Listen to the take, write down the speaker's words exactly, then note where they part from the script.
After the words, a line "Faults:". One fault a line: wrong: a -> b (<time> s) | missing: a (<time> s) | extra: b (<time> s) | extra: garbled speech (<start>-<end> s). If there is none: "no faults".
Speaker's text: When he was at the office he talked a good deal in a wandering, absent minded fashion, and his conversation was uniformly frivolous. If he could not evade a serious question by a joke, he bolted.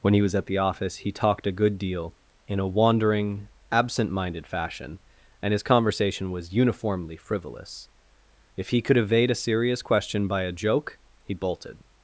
When he was at the office he talked a good deal in a wandering, absent minded fashion, and his conversation was uniformly frivolous. If he could evade a serious question by a joke, he bolted.
Faults:
missing: not (9.0 s)